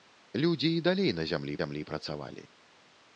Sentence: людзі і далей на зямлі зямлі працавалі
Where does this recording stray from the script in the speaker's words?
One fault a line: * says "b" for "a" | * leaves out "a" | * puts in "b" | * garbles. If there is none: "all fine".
all fine